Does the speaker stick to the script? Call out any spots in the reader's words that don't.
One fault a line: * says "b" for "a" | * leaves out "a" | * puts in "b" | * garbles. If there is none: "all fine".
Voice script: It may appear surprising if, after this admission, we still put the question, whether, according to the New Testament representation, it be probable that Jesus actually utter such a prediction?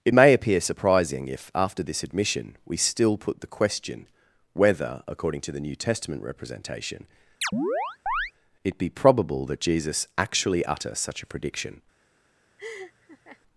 all fine